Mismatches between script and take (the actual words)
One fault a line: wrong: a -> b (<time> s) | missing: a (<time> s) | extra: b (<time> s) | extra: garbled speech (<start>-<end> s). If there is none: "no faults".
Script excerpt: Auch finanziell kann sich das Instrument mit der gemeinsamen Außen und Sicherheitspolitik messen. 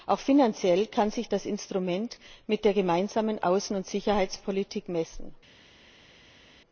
no faults